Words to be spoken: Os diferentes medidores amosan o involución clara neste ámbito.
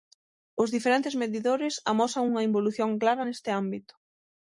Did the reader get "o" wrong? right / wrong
wrong